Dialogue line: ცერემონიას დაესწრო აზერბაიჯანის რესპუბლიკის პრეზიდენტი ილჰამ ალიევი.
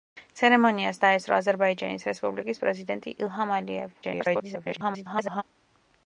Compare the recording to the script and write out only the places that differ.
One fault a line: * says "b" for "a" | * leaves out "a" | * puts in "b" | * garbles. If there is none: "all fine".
* garbles